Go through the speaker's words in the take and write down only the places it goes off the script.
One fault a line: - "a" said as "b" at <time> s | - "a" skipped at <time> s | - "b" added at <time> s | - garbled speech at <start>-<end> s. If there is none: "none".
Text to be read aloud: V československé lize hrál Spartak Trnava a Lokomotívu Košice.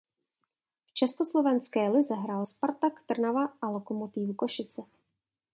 none